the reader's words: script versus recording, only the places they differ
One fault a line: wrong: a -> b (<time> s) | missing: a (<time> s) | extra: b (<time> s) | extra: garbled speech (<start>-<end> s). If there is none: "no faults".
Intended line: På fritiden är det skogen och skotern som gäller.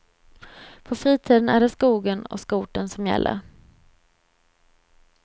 no faults